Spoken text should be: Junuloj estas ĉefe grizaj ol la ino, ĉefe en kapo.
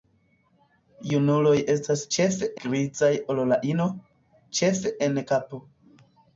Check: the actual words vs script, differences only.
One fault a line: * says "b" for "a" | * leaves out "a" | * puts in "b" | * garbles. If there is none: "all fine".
all fine